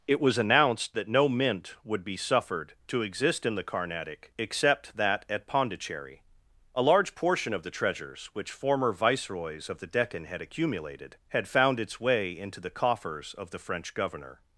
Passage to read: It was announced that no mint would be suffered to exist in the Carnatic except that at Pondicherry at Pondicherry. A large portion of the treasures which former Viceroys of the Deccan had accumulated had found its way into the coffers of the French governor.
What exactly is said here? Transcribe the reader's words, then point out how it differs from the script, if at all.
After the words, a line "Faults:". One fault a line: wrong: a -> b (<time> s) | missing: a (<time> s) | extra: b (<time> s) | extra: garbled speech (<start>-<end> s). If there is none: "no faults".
It was announced that no mint would be suffered to exist in the Carnatic except that at Pondicherry. A large portion of the treasures which former Viceroys of the Deccan had accumulated had found its way into the coffers of the French governor.
Faults:
missing: at Pondicherry (6.2 s)